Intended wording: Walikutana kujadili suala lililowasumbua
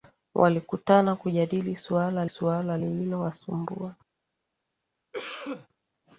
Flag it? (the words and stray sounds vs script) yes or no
yes